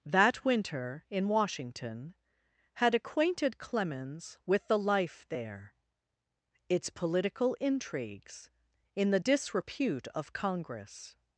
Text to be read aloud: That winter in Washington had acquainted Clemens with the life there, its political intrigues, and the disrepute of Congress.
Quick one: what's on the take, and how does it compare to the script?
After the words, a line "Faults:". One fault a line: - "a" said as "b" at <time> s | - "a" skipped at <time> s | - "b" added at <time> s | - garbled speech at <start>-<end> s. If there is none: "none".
That winter in Washington had acquainted Clemens with the life there, its political intrigues, in the disrepute of Congress.
Faults:
- "and" said as "in" at 8.9 s